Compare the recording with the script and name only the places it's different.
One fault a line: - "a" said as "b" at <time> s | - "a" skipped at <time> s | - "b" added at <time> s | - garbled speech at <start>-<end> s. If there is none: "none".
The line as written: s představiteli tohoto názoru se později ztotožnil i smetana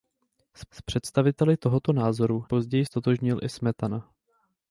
- "s" added at 0.7 s
- "se" skipped at 2.4 s